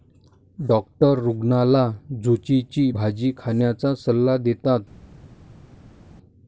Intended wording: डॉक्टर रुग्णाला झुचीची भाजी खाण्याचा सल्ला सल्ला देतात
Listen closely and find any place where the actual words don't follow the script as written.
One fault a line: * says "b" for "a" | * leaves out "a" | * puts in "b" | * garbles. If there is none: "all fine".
* leaves out "सल्ला"